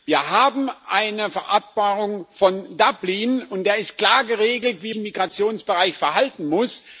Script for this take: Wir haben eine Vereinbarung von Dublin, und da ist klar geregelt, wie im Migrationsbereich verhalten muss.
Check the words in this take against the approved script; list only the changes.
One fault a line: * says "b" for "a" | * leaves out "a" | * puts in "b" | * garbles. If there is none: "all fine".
all fine